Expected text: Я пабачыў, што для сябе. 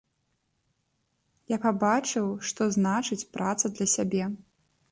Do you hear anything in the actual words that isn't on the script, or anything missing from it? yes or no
yes